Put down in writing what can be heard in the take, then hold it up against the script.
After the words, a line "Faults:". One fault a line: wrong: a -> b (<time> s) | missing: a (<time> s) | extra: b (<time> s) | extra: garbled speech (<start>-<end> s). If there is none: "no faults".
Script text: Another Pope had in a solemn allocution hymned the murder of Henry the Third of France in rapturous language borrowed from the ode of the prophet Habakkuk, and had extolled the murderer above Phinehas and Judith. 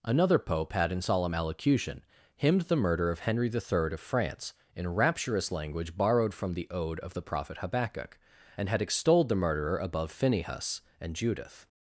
Another Pope had in solemn allocution hymned the murder of Henry the Third of France in rapturous language borrowed from the ode of the prophet Habakkuk, and had extolled the murderer above Phinehas and Judith.
Faults:
missing: a (1.0 s)